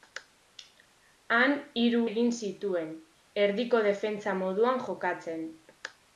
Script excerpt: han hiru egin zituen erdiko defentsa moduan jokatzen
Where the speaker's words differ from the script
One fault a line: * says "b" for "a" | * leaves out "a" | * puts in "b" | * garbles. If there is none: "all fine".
all fine